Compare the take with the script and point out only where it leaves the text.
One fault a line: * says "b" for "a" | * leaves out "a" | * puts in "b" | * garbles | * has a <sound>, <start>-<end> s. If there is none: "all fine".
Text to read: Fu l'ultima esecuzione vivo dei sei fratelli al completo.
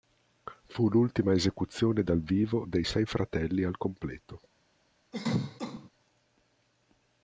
* puts in "dal"
* has a cough, 5.1-5.9 s